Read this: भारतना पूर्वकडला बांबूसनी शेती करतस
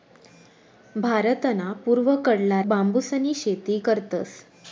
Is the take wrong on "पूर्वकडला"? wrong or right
right